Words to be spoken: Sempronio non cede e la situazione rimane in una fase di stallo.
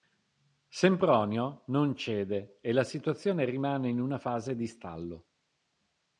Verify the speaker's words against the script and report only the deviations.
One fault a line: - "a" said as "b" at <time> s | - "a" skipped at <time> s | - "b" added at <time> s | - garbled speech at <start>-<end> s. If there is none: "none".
none